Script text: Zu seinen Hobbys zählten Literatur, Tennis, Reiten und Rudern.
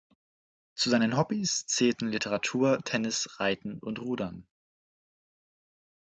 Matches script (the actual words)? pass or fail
pass